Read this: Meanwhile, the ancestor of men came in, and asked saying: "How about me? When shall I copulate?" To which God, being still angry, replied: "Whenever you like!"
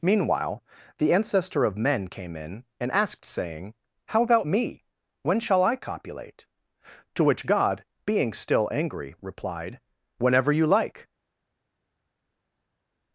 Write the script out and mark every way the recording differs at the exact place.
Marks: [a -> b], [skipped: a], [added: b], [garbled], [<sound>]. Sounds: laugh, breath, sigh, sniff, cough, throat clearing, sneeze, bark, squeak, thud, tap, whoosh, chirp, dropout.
Meanwhile, the ancestor of men came in, and asked saying: "How about me? When shall I copulate?" To which God, being still angry, replied: "Whenever you like!"